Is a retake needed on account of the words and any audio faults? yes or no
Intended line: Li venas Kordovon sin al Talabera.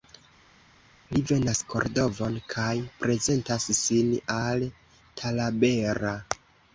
yes